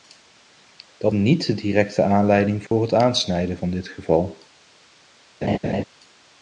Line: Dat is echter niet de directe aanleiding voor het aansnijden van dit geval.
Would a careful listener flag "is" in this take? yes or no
yes